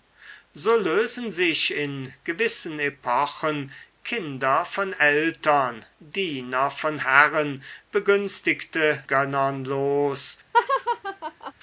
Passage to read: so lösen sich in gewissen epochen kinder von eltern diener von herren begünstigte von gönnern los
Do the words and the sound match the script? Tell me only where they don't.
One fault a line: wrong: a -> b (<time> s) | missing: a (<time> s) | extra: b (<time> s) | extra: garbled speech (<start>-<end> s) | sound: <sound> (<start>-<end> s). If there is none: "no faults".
missing: von (9.0 s)
sound: laugh (10.5-11.5 s)